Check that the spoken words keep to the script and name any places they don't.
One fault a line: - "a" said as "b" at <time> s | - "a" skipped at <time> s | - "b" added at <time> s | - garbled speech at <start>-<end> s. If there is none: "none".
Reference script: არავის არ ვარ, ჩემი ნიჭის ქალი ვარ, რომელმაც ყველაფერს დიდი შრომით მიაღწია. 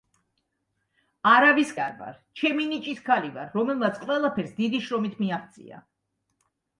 none